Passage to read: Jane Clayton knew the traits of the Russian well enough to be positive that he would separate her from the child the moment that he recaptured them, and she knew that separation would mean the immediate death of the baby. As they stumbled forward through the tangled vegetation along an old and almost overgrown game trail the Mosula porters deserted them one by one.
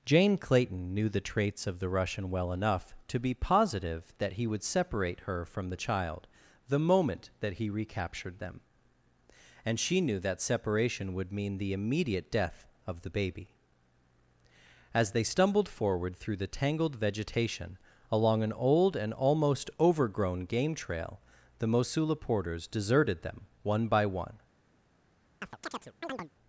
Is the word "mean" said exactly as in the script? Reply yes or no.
yes